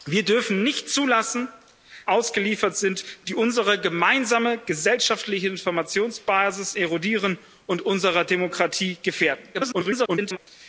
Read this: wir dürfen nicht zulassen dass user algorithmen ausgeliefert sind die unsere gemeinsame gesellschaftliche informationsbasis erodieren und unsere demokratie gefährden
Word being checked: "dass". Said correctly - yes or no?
no